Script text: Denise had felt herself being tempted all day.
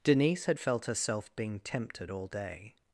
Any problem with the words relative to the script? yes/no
no